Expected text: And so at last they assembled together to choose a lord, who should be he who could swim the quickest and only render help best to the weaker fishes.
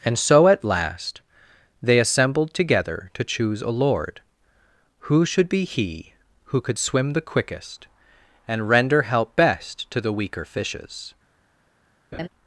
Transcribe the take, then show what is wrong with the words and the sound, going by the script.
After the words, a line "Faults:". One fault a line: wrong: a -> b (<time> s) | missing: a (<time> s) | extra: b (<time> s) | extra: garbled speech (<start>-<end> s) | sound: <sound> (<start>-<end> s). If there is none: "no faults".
And so at last they assembled together to choose a lord, who should be he who could swim the quickest and render help best to the weaker fishes.
Faults:
missing: only (8.7 s)
sound: laugh (12.1-12.3 s)